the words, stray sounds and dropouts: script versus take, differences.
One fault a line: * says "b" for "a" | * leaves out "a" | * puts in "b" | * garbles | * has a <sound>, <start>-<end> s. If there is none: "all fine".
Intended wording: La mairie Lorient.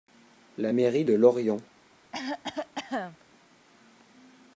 * puts in "de"
* has a cough, 2.1-3.2 s